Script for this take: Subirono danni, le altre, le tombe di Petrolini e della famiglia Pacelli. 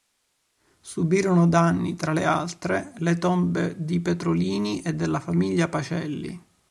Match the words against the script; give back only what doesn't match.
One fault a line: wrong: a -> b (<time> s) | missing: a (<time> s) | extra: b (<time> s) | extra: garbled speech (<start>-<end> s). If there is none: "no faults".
extra: tra (1.9 s)